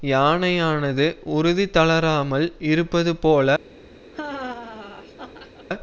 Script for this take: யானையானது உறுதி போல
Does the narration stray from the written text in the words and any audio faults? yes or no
yes